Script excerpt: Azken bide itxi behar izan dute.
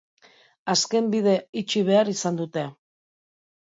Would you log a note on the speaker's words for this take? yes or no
no